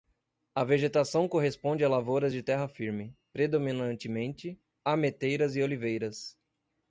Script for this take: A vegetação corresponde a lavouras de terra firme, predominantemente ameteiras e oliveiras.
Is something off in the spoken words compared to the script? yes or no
no